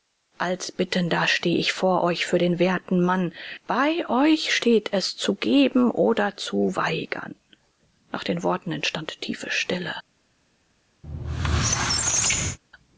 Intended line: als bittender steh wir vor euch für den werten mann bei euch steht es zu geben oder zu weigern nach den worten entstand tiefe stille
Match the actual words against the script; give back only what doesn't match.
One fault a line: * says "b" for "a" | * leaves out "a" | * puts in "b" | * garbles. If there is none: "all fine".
* says "ich" for "wir"